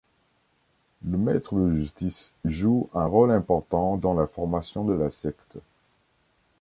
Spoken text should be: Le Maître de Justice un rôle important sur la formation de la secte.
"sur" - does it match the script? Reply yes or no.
no